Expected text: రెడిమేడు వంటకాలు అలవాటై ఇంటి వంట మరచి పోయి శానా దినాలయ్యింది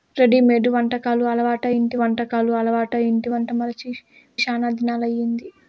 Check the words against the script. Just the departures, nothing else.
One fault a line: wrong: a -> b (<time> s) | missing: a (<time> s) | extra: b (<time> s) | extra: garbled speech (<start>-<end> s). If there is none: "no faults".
extra: వంటకాలు అలవాటై ఇంటి (2.0 s)
missing: పోయి (3.9 s)